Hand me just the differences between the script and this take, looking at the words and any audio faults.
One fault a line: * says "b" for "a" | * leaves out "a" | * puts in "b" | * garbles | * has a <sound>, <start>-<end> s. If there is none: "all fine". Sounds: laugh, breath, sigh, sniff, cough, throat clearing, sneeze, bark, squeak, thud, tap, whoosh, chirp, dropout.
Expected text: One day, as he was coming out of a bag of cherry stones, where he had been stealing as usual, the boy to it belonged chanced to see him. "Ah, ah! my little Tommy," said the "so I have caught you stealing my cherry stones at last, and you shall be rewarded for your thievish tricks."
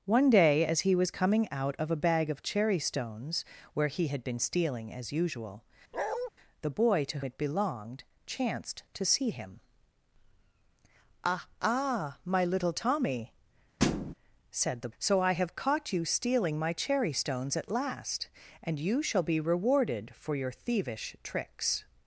* has a bark, 5.9-6.3 s
* has a thud, 13.8-14.1 s